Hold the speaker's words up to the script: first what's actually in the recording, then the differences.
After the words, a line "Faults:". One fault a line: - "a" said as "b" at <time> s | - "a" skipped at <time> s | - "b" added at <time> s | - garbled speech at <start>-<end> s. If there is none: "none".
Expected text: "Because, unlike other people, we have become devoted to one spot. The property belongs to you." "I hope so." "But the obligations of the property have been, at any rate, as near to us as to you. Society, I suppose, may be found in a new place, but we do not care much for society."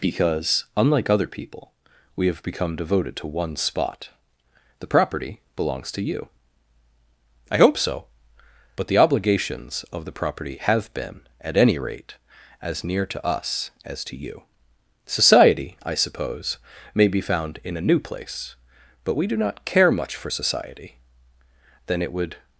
"Because, unlike other people, we have become devoted to one spot. The property belongs to you." "I hope so." "But the obligations of the property have been, at any rate, as near to us as to you. Society, I suppose, may be found in a new place, but we do not care much for society." "Then it would
Faults:
- "Then it would" added at 21.9 s